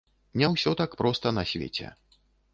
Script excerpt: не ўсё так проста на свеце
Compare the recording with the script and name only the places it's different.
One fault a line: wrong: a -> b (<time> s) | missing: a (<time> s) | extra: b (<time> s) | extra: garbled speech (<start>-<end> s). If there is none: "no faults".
no faults